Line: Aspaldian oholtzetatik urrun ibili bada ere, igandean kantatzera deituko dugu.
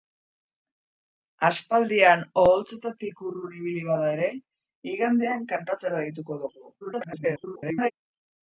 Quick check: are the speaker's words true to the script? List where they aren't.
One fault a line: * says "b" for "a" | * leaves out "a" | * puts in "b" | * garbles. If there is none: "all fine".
* garbles